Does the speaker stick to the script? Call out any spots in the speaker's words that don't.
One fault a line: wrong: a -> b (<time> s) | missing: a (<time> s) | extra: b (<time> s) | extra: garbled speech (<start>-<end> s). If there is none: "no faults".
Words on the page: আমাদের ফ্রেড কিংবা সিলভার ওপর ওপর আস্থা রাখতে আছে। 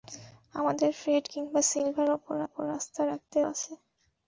no faults